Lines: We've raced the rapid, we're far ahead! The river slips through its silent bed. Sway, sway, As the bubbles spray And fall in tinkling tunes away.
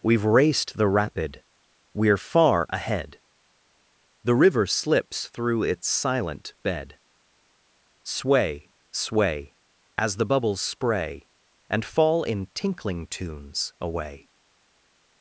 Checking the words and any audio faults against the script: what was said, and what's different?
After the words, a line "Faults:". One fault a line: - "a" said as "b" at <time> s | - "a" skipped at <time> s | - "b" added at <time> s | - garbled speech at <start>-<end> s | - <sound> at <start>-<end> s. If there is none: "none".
We've raced the rapid, we're far ahead! The river slips through its silent bed. Sway, sway, As the bubbles spray And fall in tinkling tunes away.
Faults:
none